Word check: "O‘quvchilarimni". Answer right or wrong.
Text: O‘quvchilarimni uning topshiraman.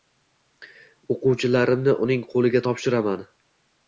right